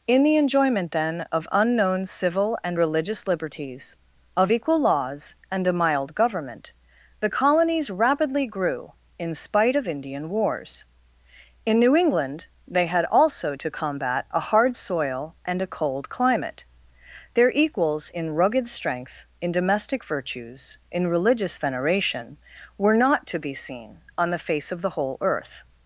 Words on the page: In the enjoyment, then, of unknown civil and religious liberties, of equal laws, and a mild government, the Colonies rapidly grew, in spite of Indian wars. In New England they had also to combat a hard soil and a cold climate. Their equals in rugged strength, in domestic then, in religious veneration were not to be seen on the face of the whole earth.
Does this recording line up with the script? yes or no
no